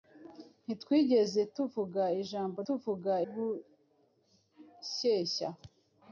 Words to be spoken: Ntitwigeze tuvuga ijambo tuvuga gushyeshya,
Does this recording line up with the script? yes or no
yes